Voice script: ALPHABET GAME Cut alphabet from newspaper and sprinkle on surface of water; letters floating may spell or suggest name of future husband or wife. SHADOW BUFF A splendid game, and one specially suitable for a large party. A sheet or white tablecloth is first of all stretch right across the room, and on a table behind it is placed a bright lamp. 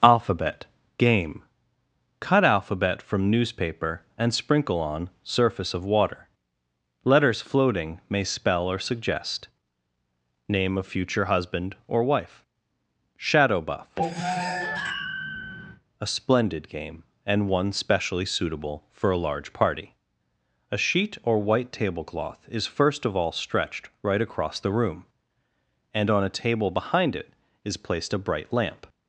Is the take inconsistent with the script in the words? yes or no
yes